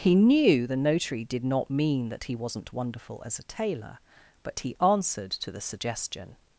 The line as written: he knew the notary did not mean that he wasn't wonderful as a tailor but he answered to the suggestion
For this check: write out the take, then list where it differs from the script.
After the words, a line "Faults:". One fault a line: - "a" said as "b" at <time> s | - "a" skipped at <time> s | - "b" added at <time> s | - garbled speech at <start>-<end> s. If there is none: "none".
he knew the notary did not mean that he wasn't wonderful as a tailor but he answered to the suggestion
Faults:
none